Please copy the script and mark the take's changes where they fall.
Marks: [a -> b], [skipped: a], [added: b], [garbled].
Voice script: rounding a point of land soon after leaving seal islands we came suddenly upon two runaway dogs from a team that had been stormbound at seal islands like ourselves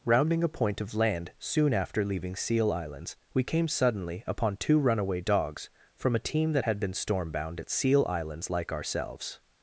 rounding a point of land soon after leaving seal islands we came suddenly upon two runaway dogs from a team that had been stormbound at seal islands like ourselves